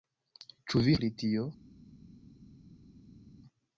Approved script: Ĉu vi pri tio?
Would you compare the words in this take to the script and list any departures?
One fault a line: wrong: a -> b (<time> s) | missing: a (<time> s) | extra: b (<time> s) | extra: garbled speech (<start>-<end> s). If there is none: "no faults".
no faults